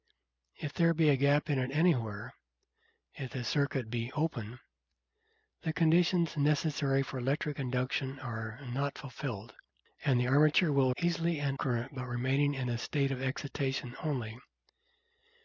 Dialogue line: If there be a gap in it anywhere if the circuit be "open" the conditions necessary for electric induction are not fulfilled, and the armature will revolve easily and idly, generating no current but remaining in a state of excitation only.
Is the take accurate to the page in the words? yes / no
no